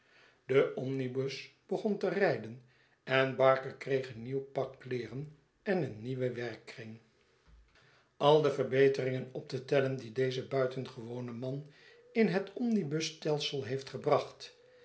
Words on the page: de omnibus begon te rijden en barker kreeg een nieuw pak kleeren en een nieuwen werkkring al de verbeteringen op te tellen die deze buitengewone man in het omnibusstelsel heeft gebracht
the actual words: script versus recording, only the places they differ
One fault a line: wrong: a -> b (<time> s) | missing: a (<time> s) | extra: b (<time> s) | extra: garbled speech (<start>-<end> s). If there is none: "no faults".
no faults